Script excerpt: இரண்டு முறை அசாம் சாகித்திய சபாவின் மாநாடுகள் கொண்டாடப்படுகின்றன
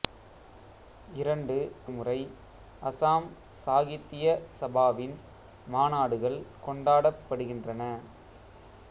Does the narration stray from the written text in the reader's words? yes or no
no